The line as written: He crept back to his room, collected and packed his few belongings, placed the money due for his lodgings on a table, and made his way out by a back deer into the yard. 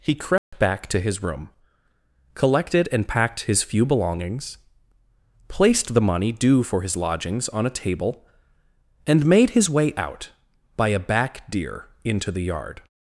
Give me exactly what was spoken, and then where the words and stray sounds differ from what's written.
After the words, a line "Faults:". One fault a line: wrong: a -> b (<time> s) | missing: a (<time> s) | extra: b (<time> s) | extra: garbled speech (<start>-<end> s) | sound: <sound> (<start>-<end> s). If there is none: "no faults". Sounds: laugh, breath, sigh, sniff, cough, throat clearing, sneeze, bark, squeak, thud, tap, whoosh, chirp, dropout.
He crept back to his room, collected and packed his few belongings, placed the money due for his lodgings on a table, and made his way out by a back deer into the yard.
Faults:
sound: dropout (0.4-0.5 s)